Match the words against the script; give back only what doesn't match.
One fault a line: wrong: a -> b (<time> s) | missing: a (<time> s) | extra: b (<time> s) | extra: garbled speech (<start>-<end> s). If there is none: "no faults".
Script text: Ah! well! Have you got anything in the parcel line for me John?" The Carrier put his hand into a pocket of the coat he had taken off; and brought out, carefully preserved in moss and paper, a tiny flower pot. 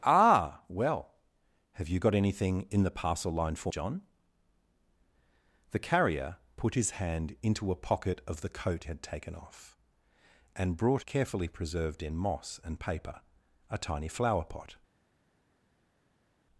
missing: me (3.7 s)
missing: he (8.8 s)
missing: out (11.1 s)